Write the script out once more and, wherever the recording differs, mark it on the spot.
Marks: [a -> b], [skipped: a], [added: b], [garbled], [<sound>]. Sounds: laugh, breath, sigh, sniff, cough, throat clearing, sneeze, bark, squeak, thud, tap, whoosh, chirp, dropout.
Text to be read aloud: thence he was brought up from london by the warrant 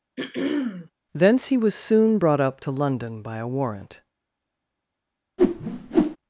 [throat clearing] thence he was [added: soon] brought up [from -> to] london by [the -> a] warrant [whoosh]